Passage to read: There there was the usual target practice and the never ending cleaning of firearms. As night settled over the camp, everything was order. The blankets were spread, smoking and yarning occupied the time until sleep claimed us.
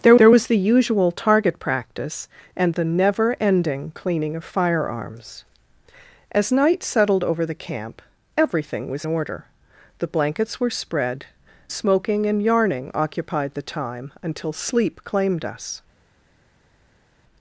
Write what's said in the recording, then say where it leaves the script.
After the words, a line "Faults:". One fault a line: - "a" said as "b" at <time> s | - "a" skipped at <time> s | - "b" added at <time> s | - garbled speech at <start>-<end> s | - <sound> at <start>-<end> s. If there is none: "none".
There there was the usual target practice and the never ending cleaning of firearms. As night settled over the camp, everything was order. The blankets were spread, smoking and yarning occupied the time until sleep claimed us.
Faults:
none